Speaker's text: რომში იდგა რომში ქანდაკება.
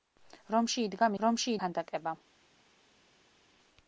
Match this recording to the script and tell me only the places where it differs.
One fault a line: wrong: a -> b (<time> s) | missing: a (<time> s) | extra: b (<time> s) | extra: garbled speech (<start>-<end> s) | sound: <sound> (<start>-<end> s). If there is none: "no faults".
no faults